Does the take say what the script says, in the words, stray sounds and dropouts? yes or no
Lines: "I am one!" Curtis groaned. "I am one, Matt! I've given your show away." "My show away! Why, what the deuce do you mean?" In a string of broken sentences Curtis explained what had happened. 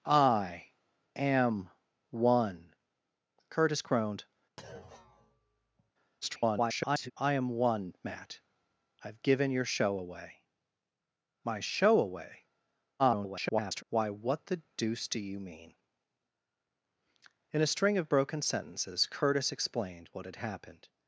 no